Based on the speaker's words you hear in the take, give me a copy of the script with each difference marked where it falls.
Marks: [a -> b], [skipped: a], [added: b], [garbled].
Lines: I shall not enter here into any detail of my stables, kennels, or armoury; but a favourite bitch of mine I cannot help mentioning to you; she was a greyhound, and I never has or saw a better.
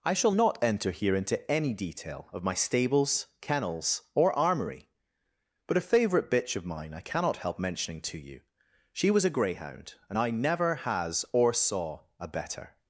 I shall not enter here into any detail of my stables, kennels, or armoury; but a favourite bitch of mine I cannot help mentioning to you; she was a greyhound, and I never has or saw a better.